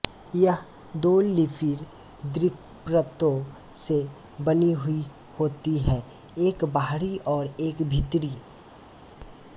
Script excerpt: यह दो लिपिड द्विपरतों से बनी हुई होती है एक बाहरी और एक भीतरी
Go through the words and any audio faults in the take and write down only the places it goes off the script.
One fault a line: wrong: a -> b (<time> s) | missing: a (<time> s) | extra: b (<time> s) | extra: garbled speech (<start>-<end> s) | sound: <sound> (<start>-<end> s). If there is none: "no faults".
no faults